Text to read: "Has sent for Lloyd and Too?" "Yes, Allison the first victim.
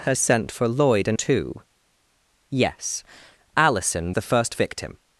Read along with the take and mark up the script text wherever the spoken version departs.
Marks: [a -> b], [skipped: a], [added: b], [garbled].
"Has sent for Lloyd and Too?" "Yes, Allison the first victim.